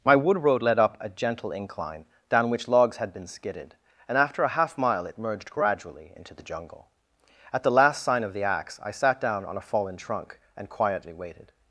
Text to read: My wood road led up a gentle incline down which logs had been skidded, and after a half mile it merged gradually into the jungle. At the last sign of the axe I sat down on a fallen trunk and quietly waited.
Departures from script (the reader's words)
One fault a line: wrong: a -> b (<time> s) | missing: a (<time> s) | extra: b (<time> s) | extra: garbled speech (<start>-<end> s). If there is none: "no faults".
no faults